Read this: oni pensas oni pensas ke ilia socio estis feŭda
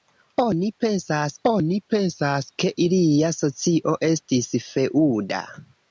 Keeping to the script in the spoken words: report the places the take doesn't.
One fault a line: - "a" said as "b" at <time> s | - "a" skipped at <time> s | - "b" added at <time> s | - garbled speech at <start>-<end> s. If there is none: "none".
none